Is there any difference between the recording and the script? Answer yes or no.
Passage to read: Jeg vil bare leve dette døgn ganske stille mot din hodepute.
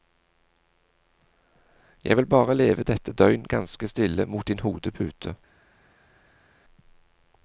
no